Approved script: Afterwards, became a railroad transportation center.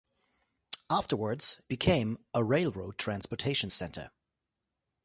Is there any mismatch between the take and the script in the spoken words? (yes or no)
no